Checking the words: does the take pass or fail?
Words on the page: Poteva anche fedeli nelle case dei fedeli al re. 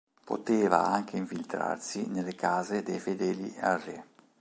fail